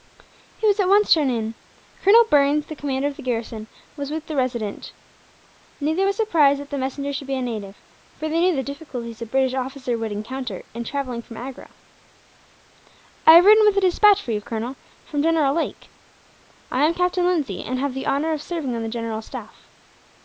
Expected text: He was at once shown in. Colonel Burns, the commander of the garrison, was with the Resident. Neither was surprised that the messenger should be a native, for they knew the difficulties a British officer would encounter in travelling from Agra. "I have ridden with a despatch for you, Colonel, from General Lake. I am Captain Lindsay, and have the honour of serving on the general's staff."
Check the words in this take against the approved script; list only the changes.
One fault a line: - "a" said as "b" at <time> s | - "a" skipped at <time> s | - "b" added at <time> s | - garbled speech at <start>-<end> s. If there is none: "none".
none